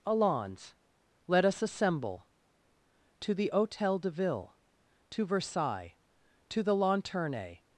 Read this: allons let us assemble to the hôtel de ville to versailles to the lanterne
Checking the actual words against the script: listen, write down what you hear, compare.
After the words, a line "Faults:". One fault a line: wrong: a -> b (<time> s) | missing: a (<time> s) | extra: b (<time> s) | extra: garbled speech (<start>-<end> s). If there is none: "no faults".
allons let us assemble to the hôtel de ville to versailles to the lanterne
Faults:
no faults